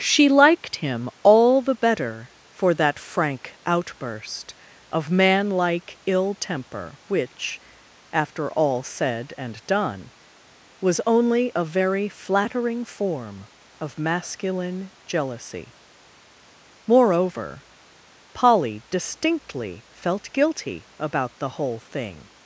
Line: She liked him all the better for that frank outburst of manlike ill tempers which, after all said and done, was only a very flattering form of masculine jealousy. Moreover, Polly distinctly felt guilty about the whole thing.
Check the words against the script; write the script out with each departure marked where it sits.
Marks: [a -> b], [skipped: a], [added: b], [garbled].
She liked him all the better for that frank outburst of manlike ill [tempers -> temper] which, after all said and done, was only a very flattering form of masculine jealousy. Moreover, Polly distinctly felt guilty about the whole thing.